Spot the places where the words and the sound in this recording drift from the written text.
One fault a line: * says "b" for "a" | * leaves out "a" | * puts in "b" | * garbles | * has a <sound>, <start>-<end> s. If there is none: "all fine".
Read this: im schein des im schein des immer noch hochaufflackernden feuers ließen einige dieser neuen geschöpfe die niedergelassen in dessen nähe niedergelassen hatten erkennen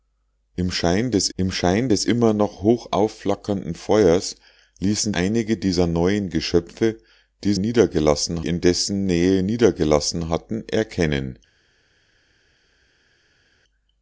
all fine